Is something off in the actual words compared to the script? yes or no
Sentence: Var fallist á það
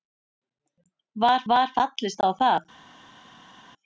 yes